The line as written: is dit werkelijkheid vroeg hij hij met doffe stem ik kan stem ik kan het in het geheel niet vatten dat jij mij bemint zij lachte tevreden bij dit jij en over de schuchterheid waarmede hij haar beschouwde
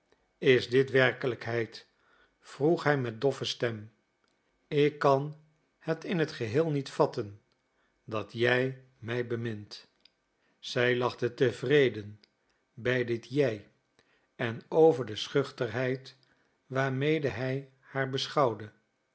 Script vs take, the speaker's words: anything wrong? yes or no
yes